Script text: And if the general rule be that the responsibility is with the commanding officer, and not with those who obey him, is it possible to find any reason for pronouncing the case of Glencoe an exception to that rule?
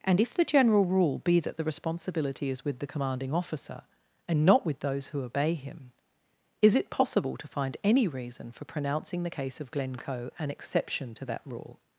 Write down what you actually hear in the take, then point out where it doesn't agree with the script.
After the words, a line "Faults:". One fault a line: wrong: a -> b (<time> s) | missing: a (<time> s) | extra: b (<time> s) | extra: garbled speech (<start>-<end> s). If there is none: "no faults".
And if the general rule be that the responsibility is with the commanding officer, and not with those who obey him, is it possible to find any reason for pronouncing the case of Glencoe an exception to that rule?
Faults:
no faults